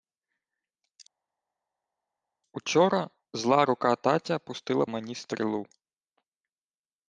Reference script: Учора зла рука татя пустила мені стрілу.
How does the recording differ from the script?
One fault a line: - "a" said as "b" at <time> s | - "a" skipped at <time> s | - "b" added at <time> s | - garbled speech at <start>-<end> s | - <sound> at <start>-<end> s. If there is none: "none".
none